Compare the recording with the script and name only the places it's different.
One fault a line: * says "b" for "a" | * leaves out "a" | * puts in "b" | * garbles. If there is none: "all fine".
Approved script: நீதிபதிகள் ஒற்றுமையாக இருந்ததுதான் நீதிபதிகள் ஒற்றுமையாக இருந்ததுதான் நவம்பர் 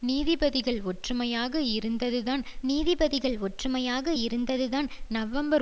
all fine